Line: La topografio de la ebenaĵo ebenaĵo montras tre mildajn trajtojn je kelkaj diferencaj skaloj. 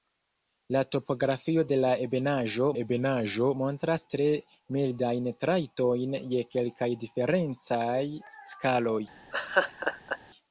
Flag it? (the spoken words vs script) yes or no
no